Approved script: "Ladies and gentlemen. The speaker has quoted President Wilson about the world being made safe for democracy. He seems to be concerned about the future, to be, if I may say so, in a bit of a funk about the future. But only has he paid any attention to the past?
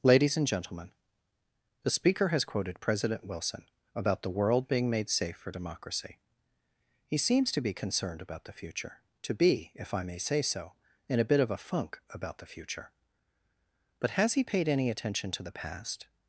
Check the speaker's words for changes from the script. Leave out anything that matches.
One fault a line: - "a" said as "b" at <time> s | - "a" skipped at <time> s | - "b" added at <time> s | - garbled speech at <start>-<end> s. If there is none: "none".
- "only" skipped at 14.1 s